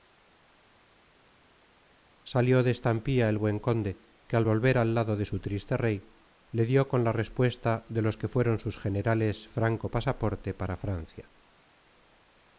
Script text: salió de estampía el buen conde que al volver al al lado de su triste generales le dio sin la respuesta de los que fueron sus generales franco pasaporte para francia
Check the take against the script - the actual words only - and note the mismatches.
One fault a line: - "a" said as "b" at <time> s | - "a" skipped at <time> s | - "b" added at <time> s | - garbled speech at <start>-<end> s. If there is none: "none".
- "al" skipped at 4.9 s
- "generales" said as "rey" at 5.8 s
- "sin" said as "con" at 6.9 s